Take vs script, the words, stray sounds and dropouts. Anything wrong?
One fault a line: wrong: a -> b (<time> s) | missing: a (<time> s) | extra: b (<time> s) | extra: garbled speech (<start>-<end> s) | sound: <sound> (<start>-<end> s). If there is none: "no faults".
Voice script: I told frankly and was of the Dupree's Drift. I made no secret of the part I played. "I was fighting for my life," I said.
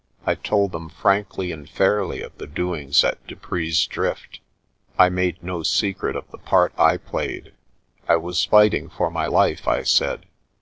extra: them (0.7 s)
wrong: was -> fairly (1.7 s)
extra: doings at (2.5 s)